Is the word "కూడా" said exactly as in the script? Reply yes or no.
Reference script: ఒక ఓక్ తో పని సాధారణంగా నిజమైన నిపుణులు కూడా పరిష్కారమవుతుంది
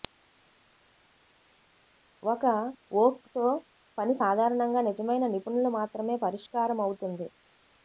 no